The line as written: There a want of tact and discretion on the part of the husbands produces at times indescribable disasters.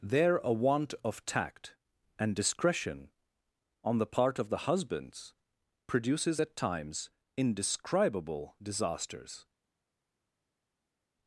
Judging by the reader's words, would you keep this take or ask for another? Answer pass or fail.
pass